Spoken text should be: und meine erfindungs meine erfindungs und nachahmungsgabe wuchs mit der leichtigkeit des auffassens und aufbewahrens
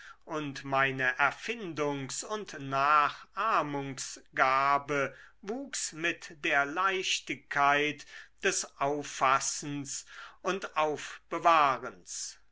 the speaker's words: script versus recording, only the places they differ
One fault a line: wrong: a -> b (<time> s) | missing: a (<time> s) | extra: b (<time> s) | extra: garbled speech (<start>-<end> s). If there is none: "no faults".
missing: meine erfindungs (2.2 s)